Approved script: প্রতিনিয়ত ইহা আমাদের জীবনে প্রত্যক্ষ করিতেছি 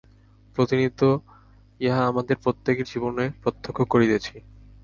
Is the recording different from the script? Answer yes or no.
yes